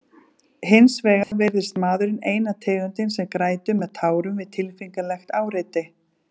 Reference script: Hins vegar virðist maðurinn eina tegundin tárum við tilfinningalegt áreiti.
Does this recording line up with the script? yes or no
no